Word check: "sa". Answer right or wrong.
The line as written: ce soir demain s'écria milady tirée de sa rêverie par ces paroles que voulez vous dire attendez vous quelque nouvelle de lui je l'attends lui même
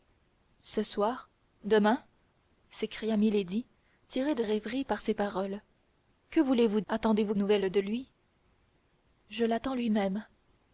wrong